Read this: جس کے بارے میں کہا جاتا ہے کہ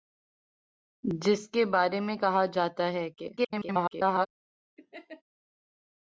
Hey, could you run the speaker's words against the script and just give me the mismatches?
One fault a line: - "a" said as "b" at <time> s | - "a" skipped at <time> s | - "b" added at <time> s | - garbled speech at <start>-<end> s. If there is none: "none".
- garbled speech at 3.4-4.3 s